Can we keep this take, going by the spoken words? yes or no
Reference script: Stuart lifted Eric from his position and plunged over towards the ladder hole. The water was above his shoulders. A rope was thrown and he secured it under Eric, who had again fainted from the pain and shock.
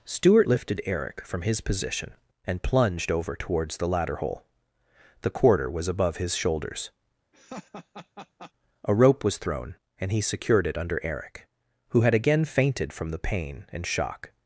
no